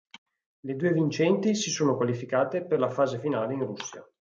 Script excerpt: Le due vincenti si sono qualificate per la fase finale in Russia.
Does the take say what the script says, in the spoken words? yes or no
yes